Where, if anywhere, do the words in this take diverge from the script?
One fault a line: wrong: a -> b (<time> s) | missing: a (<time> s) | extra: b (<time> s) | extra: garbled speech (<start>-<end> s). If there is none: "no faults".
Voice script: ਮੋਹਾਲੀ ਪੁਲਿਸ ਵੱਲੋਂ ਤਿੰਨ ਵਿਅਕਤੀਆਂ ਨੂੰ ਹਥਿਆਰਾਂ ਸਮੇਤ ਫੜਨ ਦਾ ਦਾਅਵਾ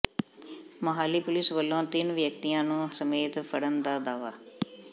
missing: ਹਥਿਆਰਾਂ (2.9 s)